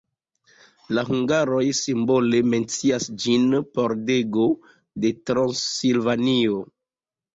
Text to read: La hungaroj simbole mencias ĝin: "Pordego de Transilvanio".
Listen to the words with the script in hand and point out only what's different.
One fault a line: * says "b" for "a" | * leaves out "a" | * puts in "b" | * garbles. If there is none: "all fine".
all fine